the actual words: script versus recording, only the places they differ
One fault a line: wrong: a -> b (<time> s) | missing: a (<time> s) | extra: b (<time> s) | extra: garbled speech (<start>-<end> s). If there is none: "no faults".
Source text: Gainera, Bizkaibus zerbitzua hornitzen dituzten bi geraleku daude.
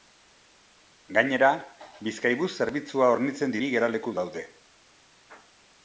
missing: dituzten (3.5 s)